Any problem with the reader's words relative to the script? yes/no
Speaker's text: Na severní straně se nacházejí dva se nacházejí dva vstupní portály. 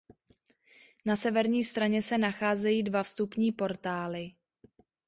yes